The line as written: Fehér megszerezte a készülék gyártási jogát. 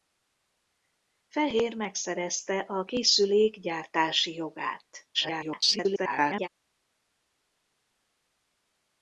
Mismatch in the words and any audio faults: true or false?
true